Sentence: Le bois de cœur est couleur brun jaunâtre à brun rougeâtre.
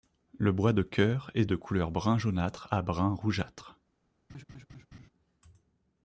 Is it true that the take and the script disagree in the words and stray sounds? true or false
true